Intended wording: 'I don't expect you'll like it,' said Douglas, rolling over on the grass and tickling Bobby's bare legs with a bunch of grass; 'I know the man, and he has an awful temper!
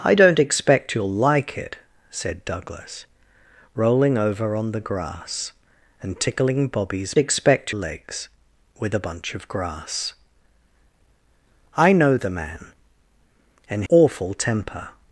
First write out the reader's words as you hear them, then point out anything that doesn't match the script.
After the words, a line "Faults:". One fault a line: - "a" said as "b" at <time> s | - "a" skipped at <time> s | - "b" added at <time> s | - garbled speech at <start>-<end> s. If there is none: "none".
'I don't expect you'll like it,' said Douglas, rolling over on the grass and tickling Bobby's expect legs with a bunch of grass; 'I know the man, and awful temper!
Faults:
- "bare" said as "expect" at 7.2 s
- "he has an" skipped at 13.8 s